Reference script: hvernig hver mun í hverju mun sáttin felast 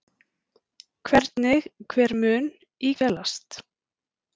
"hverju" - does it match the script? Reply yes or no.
no